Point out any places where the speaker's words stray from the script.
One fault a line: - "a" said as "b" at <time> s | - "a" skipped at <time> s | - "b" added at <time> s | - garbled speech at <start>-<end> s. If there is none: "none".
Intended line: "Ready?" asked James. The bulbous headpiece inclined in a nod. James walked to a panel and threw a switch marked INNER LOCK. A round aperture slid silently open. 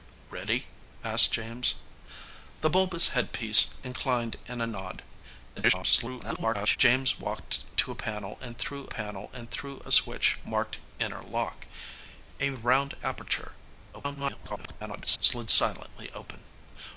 - garbled speech at 5.6-6.8 s
- "panel and threw" added at 8.9 s
- garbled speech at 13.9-15.2 s